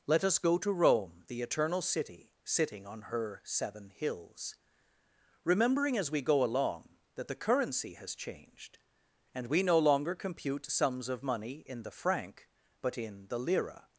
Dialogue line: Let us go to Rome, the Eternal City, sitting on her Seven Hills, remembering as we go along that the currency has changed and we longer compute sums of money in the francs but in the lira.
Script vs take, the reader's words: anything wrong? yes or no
yes